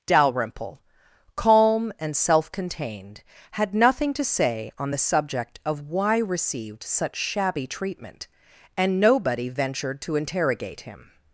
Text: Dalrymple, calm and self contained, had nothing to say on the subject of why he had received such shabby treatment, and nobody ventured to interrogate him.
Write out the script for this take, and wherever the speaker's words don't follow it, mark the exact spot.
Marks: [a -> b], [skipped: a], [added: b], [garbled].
Dalrymple, calm and self contained, had nothing to say on the subject of why [skipped: he had] received such shabby treatment, and nobody ventured to interrogate him.